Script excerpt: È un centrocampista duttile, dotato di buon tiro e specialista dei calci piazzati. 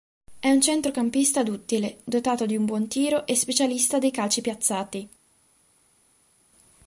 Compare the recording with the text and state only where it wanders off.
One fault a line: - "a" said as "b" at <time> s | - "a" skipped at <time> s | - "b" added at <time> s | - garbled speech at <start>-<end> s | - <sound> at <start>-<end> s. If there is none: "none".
- "un" added at 2.5 s